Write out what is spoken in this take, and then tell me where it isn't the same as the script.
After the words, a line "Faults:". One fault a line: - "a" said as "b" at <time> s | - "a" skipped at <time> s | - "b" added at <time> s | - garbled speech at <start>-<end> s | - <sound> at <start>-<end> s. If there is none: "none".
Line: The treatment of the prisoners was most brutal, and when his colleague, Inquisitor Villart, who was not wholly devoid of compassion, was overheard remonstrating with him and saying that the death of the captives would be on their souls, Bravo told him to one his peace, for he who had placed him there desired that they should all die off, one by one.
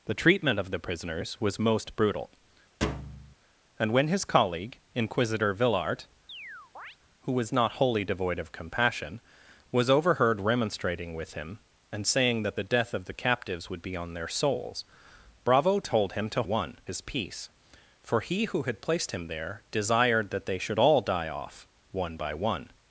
The treatment of the prisoners was most brutal, and when his colleague, Inquisitor Villart, who was not wholly devoid of compassion, was overheard remonstrating with him and saying that the death of the captives would be on their souls, Bravo told him to one his peace, for he who had placed him there desired that they should all die off, one by one.
Faults:
- thud at 2.8-3.4 s
- chirp at 6.3-7.0 s